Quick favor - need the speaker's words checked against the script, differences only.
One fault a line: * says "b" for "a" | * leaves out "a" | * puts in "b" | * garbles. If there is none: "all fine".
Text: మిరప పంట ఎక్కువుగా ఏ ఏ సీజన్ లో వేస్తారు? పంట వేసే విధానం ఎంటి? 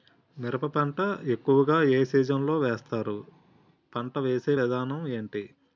* leaves out "ఏ"